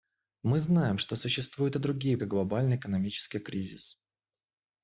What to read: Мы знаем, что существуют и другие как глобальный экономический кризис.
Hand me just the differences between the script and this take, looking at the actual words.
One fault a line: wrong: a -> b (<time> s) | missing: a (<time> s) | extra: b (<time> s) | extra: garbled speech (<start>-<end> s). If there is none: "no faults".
no faults